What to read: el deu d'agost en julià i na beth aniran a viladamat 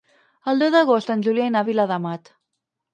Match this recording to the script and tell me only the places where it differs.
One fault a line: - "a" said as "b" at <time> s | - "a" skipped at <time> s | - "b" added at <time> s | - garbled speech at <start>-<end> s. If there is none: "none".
- "beth aniran" skipped at 1.6 s